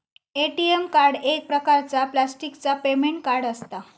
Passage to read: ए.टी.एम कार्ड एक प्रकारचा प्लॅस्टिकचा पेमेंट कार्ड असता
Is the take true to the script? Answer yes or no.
yes